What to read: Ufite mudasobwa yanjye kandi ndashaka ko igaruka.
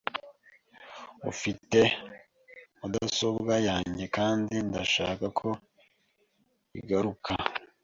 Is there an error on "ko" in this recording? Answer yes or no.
no